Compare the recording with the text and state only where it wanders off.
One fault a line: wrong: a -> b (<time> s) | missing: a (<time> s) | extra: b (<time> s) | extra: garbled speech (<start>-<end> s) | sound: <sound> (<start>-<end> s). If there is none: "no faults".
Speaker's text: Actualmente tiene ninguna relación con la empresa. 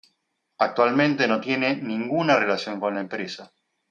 extra: no (1.3 s)